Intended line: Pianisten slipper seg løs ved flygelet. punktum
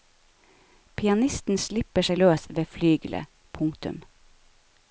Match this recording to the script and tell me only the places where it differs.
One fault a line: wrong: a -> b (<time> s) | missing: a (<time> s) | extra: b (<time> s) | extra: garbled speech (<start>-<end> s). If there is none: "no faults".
no faults